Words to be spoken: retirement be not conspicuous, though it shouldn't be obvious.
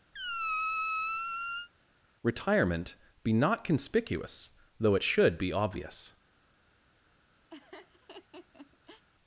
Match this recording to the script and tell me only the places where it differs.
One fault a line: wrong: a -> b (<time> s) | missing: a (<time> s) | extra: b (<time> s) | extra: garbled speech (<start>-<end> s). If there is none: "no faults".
wrong: shouldn't -> should (5.0 s)